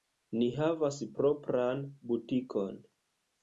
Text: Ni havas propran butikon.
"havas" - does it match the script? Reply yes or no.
yes